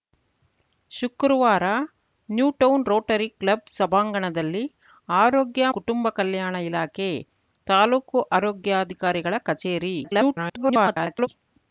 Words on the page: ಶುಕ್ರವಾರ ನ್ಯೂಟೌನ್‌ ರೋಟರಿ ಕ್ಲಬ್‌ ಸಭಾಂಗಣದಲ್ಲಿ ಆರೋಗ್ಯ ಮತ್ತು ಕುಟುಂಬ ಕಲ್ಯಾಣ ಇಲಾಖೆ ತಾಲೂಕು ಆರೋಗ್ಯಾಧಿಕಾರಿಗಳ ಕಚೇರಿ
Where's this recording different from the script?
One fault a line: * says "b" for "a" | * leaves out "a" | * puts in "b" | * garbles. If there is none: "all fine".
* leaves out "ಮತ್ತು"
* garbles